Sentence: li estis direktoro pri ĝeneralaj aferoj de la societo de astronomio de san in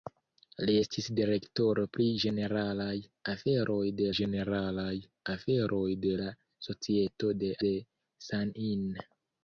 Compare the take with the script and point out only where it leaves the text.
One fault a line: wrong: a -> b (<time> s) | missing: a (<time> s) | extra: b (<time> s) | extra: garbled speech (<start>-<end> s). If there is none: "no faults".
extra: ĝeneralaj aferoj de (4.2 s)
missing: astronomio (7.5 s)